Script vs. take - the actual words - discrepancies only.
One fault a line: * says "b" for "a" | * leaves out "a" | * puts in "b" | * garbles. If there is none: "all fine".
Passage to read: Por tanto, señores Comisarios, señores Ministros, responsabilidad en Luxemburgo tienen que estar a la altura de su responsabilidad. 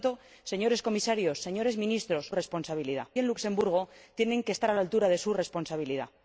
all fine